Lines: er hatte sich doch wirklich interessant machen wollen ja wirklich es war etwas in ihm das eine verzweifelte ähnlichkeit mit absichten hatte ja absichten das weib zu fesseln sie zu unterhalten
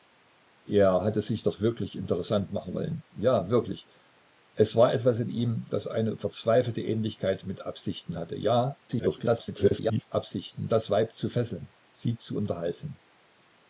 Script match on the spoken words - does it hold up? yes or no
no